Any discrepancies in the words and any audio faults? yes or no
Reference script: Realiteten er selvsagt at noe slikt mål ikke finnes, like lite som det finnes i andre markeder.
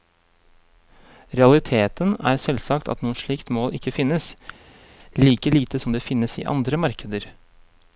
no